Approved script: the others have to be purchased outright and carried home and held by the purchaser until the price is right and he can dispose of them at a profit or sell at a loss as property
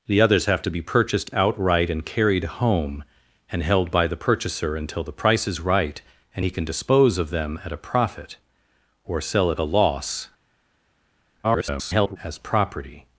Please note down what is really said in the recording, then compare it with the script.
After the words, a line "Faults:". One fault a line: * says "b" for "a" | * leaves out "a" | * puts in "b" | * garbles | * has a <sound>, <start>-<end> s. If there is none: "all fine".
the others have to be purchased outright and carried home and held by the purchaser until the price is right and he can dispose of them at a profit or sell at a loss [garbled] as property
Faults:
* garbles